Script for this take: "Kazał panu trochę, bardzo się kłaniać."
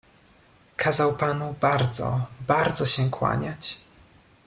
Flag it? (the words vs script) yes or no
yes